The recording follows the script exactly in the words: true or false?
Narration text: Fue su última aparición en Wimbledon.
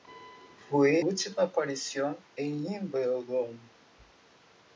false